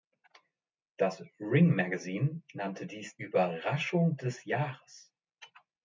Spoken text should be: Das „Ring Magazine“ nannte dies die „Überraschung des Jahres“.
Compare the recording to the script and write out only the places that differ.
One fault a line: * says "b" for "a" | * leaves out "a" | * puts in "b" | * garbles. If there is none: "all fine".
* leaves out "die"